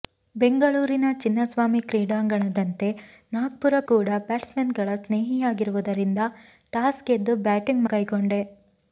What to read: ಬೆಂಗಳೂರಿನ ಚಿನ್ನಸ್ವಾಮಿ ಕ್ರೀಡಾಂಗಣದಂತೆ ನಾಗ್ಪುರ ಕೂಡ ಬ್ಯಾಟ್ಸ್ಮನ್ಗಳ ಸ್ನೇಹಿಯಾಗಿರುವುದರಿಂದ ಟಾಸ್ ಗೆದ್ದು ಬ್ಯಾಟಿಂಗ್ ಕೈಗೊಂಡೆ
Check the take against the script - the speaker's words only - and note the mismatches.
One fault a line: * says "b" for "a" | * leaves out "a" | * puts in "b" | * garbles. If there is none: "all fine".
all fine